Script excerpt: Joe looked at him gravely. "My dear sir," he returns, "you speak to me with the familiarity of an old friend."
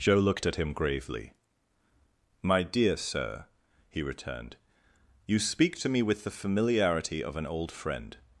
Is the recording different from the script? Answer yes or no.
yes